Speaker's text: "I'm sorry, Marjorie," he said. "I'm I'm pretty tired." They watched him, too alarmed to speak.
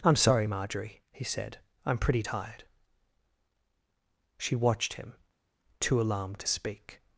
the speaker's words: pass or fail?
fail